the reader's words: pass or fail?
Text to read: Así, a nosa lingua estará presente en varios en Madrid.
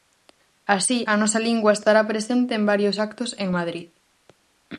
fail